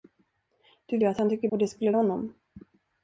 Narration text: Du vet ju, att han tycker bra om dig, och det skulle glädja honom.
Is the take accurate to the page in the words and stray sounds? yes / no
no